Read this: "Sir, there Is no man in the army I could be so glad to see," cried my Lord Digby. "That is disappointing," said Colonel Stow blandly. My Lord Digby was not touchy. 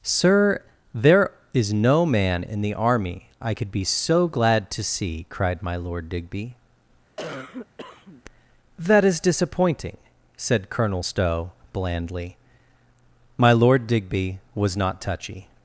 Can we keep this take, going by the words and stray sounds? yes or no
no